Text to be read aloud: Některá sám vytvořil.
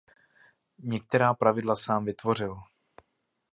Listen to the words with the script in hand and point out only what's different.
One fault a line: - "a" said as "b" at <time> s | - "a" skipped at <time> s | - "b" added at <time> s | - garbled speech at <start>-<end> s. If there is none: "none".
- "pravidla" added at 1.3 s